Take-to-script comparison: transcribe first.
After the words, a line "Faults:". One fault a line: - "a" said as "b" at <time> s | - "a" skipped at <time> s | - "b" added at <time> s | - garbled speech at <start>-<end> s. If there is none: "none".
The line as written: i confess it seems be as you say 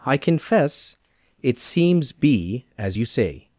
i confess it seems be as you say
Faults:
none